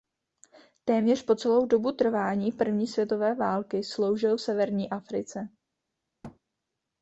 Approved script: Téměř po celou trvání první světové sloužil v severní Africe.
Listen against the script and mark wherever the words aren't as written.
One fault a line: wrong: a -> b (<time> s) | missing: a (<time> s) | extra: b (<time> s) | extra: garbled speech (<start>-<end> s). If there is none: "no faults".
extra: dobu (1.6 s)
extra: války (3.4 s)